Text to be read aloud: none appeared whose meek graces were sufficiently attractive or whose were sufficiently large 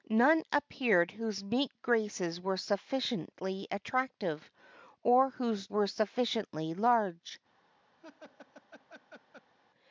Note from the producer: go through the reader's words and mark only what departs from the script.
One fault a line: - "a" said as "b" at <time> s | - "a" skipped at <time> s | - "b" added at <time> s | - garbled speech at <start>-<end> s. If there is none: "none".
none